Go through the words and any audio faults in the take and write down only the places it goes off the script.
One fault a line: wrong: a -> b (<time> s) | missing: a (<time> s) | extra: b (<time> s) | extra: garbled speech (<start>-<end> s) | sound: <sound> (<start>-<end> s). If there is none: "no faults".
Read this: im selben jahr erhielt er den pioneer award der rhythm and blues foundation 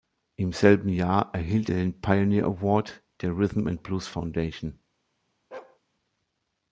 sound: bark (5.5-5.8 s)